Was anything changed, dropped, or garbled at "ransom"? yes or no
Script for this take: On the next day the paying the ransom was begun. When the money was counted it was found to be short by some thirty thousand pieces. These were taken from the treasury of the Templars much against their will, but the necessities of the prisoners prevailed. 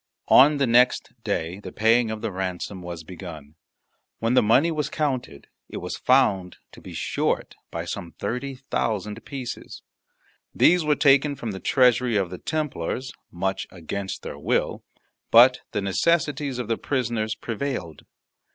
no